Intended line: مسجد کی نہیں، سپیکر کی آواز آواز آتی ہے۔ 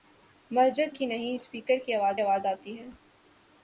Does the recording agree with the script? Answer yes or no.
yes